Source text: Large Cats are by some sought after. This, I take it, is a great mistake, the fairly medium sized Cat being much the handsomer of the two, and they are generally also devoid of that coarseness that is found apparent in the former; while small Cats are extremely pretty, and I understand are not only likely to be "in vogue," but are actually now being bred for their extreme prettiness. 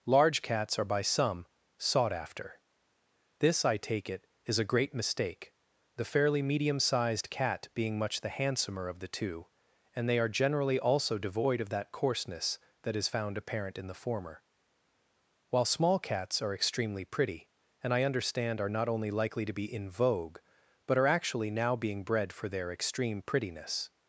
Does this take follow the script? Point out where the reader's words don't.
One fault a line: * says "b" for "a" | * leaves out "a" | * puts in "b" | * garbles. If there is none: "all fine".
all fine